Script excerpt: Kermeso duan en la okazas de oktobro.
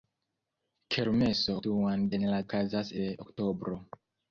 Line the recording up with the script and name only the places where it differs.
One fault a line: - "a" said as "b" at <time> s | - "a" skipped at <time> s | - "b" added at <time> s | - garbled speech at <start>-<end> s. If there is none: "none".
none